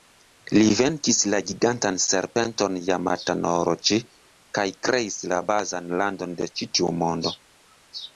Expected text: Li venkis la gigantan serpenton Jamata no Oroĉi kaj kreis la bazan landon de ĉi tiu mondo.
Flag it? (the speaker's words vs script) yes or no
no